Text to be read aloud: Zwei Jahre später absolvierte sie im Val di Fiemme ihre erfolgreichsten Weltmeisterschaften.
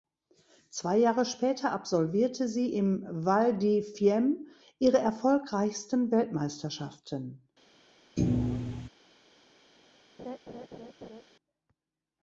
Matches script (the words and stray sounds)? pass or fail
fail